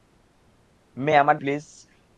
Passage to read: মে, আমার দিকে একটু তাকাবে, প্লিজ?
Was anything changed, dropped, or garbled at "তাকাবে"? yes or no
yes